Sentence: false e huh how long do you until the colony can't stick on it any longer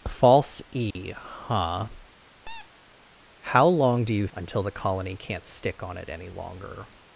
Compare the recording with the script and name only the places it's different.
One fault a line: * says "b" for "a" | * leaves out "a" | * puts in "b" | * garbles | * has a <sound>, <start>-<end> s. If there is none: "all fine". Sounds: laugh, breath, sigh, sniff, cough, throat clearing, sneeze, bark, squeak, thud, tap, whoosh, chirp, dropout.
* has a dropout, 0.9-1.0 s
* has a squeak, 2.5-2.7 s